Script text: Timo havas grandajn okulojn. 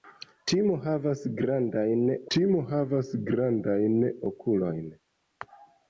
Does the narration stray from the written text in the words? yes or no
yes